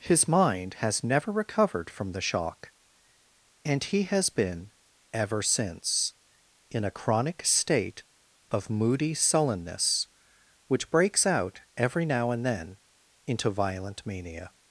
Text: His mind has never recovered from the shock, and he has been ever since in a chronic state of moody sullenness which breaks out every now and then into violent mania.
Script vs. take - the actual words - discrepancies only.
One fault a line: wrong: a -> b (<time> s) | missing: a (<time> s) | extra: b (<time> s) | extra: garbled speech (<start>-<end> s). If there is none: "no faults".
no faults